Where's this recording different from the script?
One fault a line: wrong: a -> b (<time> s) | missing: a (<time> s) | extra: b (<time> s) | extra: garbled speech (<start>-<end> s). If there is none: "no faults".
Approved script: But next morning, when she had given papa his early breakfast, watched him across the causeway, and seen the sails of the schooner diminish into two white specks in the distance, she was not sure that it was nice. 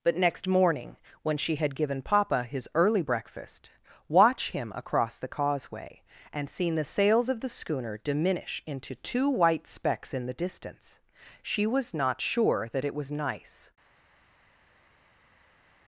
wrong: watched -> watch (4.1 s)